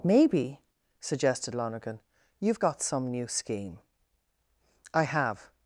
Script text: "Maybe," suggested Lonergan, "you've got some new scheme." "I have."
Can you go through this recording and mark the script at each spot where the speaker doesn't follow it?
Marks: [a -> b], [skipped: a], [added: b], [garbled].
"Maybe," suggested Lonergan, "you've got some new scheme." "I have."